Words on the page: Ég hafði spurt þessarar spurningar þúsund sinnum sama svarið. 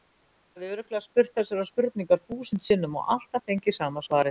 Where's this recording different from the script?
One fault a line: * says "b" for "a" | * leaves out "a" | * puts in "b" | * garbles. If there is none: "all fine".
* puts in "örugglega"
* puts in "og alltaf fengið"